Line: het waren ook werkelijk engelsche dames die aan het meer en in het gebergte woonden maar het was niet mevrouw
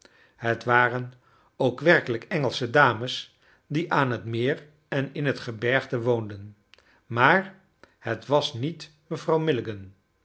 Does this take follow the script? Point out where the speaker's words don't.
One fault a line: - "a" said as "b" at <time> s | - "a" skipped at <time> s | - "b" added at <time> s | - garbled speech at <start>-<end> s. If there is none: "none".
none